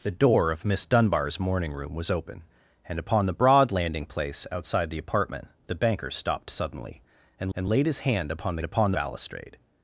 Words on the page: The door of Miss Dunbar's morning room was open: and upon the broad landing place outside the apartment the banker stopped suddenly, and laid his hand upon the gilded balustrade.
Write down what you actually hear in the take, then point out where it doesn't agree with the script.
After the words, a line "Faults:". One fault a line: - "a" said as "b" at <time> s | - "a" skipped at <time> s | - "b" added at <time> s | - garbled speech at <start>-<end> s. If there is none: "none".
The door of Miss Dunbar's morning room was open: and upon the broad landing place outside the apartment the banker stopped suddenly, and and laid his hand upon the upon balustrade.
Faults:
- "and" added at 7.5 s
- "gilded" said as "upon" at 8.6 s